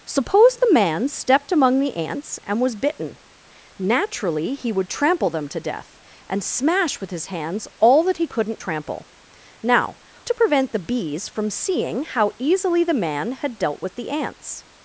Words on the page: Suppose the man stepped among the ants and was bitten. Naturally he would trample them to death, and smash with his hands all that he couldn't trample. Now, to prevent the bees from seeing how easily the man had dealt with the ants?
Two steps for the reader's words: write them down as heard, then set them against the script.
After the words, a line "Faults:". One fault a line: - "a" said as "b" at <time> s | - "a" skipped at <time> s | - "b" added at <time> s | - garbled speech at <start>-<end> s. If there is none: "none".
Suppose the man stepped among the ants and was bitten. Naturally he would trample them to death, and smash with his hands all that he couldn't trample. Now, to prevent the bees from seeing how easily the man had dealt with the ants?
Faults:
none